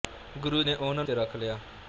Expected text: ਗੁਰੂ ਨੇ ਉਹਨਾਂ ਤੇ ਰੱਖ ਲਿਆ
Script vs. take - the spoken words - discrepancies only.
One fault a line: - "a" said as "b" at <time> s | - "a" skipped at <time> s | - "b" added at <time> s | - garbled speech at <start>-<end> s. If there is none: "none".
none